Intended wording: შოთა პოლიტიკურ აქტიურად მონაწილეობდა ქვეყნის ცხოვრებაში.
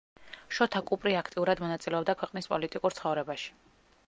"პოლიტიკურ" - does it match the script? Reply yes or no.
no